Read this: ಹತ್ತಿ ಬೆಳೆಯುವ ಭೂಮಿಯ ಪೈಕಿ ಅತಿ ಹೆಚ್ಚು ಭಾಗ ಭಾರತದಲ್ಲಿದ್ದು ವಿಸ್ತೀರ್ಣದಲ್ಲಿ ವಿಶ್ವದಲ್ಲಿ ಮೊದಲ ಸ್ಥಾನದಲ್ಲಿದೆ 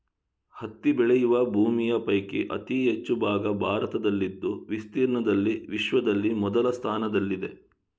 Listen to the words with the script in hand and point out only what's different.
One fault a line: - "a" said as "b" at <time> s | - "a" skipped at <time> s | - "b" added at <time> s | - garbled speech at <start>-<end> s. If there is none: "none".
none